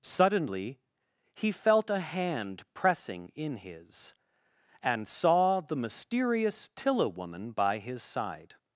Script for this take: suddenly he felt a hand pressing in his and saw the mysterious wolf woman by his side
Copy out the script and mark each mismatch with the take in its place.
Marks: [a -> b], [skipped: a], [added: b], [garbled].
suddenly he felt a hand pressing in his and saw the mysterious [wolf -> tilla] woman by his side